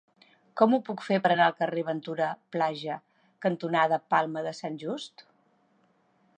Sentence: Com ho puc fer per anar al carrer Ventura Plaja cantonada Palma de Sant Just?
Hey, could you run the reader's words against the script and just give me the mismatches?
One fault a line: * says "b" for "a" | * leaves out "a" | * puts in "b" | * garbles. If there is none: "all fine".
all fine